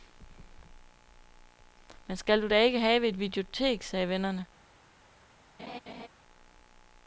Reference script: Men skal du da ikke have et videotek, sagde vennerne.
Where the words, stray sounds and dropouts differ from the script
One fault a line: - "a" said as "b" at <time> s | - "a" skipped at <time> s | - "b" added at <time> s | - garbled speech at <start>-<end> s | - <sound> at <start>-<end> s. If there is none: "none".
- laugh at 5.6-6.1 s